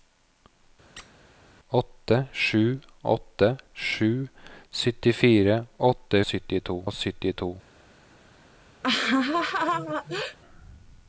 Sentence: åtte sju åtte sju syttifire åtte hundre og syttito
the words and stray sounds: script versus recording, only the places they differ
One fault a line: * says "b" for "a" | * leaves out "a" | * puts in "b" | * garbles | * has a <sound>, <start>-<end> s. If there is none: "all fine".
* has a squeak, 1.0-1.1 s
* says "syttito" for "hundre"
* has a laugh, 8.8-10.4 s